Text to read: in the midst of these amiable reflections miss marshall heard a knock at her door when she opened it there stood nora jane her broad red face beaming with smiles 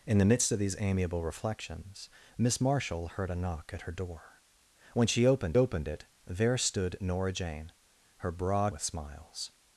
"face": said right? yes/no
no